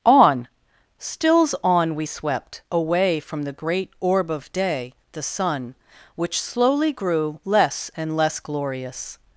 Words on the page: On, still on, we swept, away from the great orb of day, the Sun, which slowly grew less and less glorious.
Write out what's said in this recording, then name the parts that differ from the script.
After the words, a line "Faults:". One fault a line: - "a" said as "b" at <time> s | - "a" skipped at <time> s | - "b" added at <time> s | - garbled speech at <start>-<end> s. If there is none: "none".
On, stills on, we swept, away from the great orb of day, the Sun, which slowly grew less and less glorious.
Faults:
- "still" said as "stills" at 1.0 s